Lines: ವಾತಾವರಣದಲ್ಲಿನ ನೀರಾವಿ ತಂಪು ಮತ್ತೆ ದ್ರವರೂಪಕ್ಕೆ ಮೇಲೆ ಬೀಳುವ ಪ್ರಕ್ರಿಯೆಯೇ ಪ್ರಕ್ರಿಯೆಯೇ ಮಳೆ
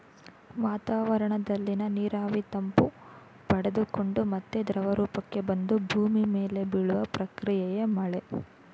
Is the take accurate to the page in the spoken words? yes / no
no